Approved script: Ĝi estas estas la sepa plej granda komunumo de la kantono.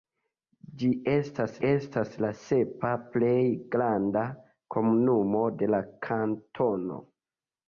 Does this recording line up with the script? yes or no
yes